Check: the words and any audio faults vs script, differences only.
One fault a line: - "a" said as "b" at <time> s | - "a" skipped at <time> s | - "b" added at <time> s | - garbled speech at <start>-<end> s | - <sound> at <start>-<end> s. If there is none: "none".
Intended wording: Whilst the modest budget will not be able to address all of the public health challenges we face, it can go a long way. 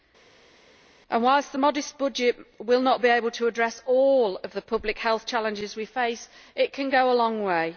none